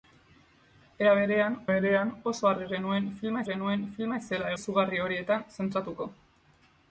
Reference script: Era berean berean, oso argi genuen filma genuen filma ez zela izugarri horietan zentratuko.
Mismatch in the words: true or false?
false